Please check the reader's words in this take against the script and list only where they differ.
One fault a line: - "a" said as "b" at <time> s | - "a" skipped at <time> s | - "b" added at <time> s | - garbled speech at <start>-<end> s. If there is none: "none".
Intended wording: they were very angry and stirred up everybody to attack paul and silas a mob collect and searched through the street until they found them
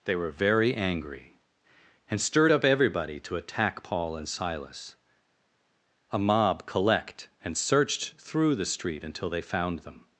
none